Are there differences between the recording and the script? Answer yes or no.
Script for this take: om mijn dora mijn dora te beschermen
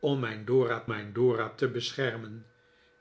no